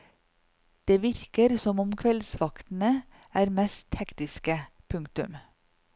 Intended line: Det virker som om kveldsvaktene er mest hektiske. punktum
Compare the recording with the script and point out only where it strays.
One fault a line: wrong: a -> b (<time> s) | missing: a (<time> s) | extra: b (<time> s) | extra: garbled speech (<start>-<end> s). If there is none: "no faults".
no faults